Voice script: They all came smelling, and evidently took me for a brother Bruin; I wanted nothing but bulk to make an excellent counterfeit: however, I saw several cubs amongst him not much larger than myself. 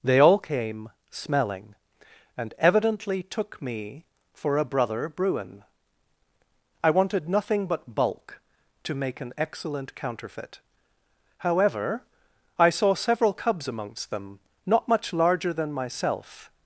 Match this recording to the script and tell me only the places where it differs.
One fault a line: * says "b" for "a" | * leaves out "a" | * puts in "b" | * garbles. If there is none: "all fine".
* says "them" for "him"